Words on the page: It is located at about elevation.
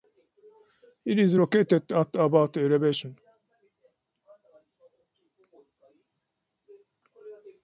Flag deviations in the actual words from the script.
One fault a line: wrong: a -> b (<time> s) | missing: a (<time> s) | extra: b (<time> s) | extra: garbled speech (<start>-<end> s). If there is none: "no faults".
no faults